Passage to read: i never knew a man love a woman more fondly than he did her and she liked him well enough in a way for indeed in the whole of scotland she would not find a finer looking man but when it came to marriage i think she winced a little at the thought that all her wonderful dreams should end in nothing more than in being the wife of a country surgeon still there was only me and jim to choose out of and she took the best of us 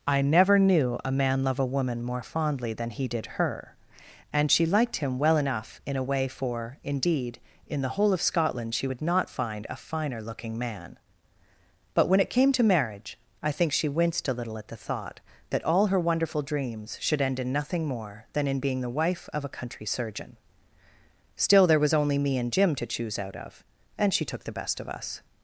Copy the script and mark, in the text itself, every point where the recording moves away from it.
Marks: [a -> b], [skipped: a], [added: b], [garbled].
i never knew a man love a woman more fondly than he did her and she liked him well enough in a way for indeed in the whole of scotland she would not find a finer looking man but when it came to marriage i think she winced a little at the thought that all her wonderful dreams should end in nothing more than in being the wife of a country surgeon still there was only me and jim to choose out of and she took the best of us